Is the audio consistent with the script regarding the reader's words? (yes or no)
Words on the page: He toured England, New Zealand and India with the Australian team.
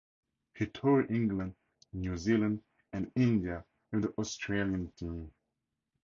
yes